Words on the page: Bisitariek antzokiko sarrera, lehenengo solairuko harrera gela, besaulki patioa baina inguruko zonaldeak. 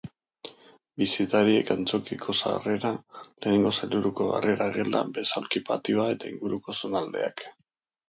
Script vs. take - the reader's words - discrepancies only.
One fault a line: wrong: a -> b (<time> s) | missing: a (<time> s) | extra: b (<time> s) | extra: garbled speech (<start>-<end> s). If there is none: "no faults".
wrong: baina -> eta (6.2 s)